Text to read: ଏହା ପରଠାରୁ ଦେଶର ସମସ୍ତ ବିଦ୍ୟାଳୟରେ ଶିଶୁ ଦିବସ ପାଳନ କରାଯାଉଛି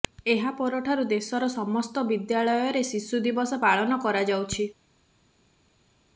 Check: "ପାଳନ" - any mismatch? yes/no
no